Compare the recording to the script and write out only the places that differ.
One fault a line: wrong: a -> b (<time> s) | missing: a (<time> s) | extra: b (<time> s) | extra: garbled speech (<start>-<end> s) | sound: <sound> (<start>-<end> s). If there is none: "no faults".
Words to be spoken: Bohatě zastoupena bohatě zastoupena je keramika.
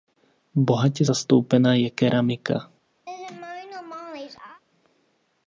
missing: bohatě zastoupena (1.7 s)
sound: laugh (3.1-4.6 s)